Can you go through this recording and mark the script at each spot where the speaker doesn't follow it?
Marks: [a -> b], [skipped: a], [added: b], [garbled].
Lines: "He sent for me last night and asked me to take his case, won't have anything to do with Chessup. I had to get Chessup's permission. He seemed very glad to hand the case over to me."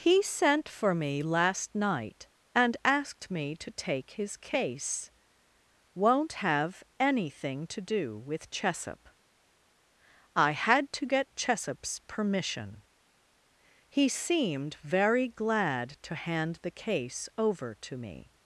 "He sent for me last night and asked me to take his case, won't have anything to do with Chessup. I had to get Chessup's permission. He seemed very glad to hand the case over to me."